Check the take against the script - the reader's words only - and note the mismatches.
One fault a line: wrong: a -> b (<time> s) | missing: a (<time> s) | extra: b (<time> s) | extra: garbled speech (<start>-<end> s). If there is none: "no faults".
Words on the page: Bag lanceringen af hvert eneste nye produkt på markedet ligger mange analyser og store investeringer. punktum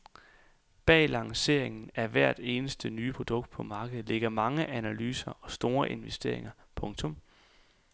no faults